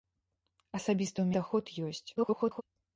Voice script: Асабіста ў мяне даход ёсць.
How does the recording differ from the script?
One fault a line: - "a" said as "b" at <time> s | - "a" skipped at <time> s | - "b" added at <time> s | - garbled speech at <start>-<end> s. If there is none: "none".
- "мяне" skipped at 1.3 s
- garbled speech at 2.2-2.6 s